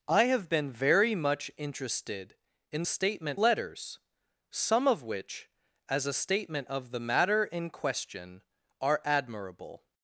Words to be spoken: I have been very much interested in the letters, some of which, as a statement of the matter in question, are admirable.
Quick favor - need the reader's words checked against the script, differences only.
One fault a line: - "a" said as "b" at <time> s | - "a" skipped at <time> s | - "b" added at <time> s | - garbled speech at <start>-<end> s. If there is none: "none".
- "the" said as "statement" at 2.8 s